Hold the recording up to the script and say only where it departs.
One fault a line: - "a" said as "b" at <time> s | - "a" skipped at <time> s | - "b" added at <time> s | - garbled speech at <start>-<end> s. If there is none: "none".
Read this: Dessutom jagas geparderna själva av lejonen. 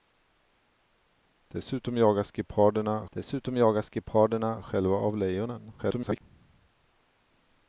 - "dessutom jagas geparderna" added at 3.1 s
- garbled speech at 5.8-6.2 s